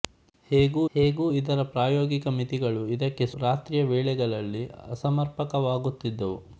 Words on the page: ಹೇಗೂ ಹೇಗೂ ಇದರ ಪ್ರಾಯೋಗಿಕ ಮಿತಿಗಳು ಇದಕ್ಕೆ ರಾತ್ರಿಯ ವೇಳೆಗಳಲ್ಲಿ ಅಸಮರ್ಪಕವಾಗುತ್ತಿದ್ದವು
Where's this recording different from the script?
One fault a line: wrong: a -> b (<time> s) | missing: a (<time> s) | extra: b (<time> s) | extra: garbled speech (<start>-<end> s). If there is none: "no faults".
no faults